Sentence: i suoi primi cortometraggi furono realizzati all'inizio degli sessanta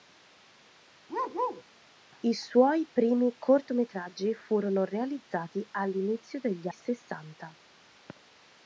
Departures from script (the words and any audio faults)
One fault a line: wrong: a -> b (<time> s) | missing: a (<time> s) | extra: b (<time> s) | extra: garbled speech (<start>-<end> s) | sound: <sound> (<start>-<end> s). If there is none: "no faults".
sound: bark (1.1-1.6 s)